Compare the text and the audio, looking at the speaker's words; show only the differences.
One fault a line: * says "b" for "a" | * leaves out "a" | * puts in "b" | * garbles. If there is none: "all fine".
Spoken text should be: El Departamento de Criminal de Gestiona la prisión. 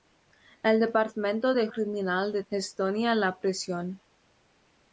all fine